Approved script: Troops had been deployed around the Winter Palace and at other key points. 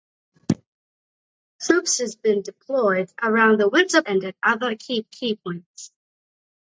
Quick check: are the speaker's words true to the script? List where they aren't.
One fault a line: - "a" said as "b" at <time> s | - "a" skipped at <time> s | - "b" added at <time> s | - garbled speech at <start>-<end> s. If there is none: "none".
- "Palace" skipped at 4.0 s
- "key" added at 5.1 s